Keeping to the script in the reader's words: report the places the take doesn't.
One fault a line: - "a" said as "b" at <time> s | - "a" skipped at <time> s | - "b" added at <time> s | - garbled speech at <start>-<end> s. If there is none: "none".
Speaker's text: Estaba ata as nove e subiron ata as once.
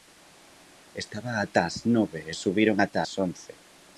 none